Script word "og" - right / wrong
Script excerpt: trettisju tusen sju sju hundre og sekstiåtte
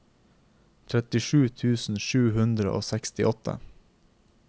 right